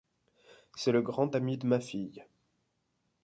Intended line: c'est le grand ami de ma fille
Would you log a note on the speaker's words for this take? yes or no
no